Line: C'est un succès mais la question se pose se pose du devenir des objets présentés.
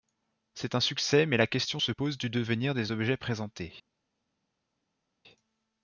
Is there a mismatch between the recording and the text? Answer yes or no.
yes